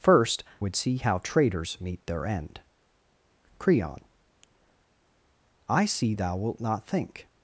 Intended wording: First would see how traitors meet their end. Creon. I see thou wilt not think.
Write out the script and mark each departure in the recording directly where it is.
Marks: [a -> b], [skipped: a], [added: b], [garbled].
First would see how traitors meet their end. Creon. I see thou wilt not think.